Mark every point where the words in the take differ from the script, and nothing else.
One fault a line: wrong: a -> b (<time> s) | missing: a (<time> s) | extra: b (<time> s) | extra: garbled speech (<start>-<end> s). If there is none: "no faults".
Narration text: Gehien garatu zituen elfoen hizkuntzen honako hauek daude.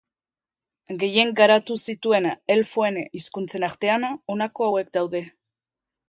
extra: artean (3.7 s)